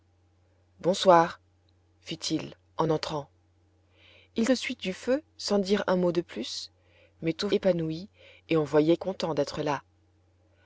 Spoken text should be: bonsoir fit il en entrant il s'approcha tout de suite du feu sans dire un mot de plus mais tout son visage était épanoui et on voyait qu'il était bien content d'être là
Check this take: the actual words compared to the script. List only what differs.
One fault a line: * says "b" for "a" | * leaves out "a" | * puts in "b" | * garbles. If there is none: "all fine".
* leaves out "s'approcha tout"
* leaves out "son visage était"
* leaves out "qu'il était bien"